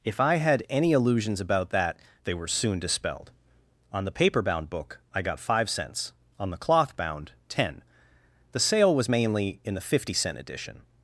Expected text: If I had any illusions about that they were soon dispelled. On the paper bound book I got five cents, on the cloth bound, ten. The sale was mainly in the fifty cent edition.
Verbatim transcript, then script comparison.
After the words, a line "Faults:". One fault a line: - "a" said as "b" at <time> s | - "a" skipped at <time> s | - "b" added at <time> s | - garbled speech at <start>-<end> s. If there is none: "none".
If I had any illusions about that they were soon dispelled. On the paper bound book I got five cents, on the cloth bound, ten. The sale was mainly in the fifty cent edition.
Faults:
none